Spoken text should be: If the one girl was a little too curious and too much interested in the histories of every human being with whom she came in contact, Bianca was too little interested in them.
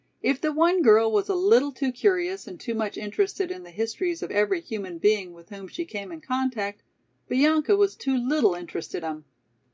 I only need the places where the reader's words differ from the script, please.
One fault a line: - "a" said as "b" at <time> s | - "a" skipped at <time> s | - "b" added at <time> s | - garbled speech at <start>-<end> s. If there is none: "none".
- "in" skipped at 9.0 s